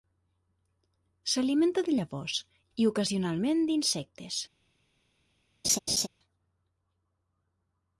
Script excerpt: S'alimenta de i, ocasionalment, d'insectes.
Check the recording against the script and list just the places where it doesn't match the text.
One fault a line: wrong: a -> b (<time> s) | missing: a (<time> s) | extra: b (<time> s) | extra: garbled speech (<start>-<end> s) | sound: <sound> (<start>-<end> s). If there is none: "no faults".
extra: llavors (2.0 s)
sound: laugh (5.6-6.1 s)